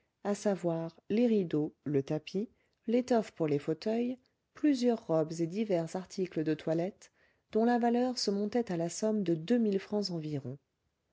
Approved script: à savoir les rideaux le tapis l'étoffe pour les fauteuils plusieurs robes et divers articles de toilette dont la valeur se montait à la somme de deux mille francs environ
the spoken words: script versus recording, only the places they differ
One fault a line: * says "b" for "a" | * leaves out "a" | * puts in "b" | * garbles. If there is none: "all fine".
all fine